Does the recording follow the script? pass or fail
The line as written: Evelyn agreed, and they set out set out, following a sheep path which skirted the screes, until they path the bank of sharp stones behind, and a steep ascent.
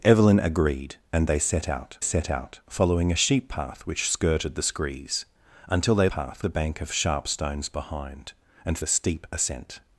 pass